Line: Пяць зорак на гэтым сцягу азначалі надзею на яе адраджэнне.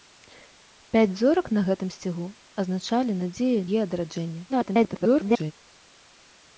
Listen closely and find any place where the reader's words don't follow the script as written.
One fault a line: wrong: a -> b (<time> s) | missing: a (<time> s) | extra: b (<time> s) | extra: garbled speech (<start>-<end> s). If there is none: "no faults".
missing: на (3.6 s)
extra: garbled speech (4.5-5.5 s)